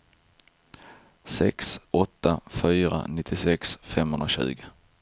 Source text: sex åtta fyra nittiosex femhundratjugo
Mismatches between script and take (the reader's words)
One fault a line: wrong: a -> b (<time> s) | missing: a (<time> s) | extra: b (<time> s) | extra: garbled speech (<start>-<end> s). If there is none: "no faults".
no faults